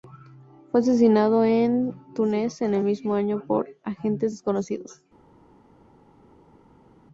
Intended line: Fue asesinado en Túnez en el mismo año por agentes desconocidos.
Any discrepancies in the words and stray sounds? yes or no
no